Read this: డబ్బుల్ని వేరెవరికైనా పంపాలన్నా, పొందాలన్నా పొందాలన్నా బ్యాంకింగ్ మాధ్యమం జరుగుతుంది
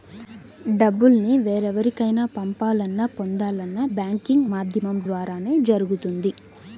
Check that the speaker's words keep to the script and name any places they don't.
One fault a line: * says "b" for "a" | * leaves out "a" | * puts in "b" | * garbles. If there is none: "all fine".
* leaves out "పొందాలన్నా"
* puts in "ద్వారానే"